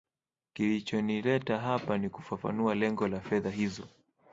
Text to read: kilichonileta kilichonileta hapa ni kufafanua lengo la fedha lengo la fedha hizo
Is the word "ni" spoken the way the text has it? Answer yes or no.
yes